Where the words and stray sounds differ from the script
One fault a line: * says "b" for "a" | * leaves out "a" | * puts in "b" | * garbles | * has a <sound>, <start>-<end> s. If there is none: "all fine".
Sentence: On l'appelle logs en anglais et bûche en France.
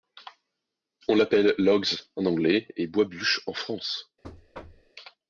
* puts in "bois"
* has a thud, 4.2-4.9 s